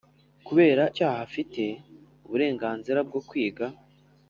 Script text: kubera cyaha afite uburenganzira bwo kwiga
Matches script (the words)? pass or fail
pass